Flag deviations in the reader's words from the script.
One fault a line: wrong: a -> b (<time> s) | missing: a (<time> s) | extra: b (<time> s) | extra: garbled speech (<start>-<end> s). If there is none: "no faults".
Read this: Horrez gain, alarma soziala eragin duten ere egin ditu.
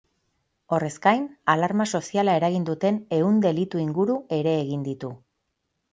extra: ehun delitu inguru (3.2 s)